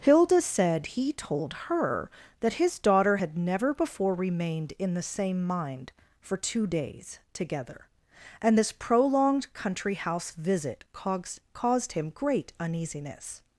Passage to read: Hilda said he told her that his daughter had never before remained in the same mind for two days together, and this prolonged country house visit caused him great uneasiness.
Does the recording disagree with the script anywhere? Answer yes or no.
yes